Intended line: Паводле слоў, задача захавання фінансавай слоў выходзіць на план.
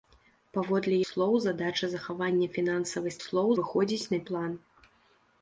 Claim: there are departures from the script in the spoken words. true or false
false